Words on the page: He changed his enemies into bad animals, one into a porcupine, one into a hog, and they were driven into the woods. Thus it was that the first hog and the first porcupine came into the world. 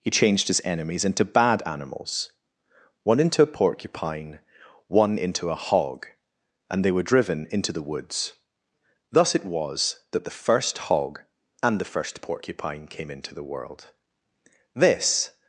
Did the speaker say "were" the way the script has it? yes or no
yes